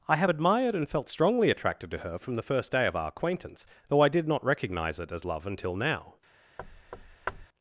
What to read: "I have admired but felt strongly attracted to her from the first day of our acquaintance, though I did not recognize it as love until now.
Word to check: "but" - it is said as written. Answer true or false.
false